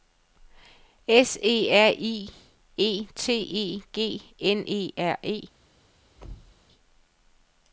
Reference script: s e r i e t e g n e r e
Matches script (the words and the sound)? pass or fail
fail